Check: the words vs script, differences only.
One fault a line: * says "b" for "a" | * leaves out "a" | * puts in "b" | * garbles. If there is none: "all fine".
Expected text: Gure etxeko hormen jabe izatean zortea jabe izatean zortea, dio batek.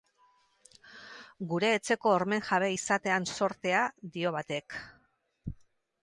* leaves out "jabe izatean zortea"